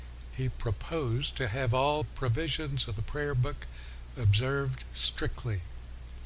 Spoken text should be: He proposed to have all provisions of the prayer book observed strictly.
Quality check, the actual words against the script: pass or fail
pass